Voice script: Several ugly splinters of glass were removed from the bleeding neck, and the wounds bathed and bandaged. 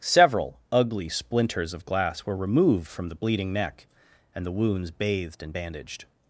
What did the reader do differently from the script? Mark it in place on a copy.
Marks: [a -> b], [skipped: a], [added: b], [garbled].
Several ugly splinters of glass were removed from the bleeding neck, and the wounds bathed and bandaged.